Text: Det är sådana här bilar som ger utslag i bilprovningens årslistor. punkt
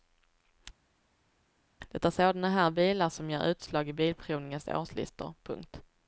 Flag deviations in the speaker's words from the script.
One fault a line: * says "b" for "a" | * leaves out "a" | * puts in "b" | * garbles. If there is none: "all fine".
all fine